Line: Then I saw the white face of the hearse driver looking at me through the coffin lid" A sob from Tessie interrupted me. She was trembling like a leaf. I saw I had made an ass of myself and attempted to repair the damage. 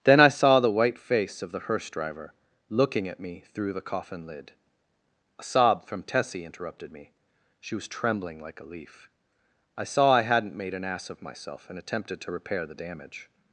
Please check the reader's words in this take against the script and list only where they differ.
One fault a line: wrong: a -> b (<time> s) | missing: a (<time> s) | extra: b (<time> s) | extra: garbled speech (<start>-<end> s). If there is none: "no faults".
wrong: had -> hadn't (10.2 s)